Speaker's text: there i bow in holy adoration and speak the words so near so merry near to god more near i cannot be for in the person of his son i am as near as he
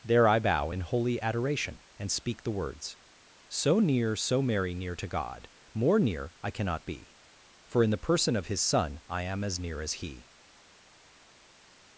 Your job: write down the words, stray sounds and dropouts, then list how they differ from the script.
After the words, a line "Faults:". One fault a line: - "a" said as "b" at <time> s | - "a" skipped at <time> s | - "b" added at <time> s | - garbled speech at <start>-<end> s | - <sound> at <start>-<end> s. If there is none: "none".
there i bow in holy adoration and speak the words so near so merry near to god more near i cannot be for in the person of his son i am as near as he
Faults:
none